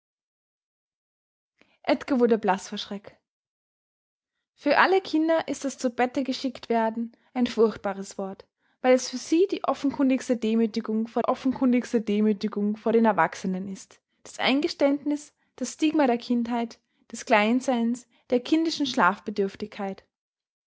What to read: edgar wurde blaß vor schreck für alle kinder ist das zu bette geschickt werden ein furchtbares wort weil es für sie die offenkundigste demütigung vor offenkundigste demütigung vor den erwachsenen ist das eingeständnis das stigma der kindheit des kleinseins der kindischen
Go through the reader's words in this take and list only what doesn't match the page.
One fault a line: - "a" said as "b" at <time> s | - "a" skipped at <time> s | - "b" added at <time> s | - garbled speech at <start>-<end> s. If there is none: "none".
none